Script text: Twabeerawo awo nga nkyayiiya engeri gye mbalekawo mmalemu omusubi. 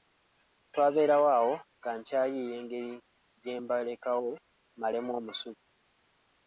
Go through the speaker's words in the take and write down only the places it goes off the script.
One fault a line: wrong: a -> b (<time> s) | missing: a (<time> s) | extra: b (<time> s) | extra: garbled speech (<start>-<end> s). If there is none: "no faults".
no faults